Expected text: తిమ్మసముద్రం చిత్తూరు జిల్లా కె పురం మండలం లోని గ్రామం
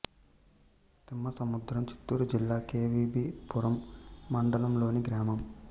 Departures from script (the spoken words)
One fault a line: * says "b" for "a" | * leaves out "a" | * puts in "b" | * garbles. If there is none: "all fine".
* puts in "వి బి"